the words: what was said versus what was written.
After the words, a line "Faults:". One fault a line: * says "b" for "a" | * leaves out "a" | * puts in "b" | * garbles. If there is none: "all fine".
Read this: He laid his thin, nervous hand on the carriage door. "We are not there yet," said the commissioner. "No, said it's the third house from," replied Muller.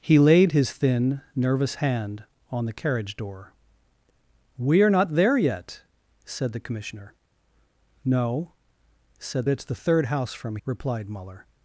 He laid his thin, nervous hand on the carriage door. "We are not there yet," said the commissioner. "No, said it's the third house from," replied Muller.
Faults:
all fine